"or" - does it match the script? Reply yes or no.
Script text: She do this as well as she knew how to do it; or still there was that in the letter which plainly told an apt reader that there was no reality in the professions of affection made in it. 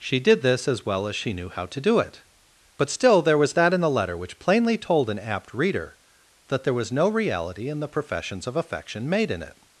no